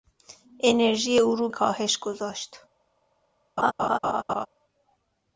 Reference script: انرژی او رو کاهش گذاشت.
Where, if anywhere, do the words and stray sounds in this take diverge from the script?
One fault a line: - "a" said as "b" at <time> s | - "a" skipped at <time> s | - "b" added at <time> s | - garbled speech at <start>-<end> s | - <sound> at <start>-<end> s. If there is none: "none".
- laugh at 3.6-4.5 s